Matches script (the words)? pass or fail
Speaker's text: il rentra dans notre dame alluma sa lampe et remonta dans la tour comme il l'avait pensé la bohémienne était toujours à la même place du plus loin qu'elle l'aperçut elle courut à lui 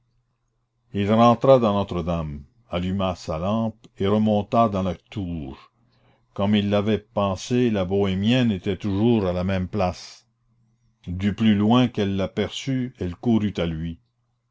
pass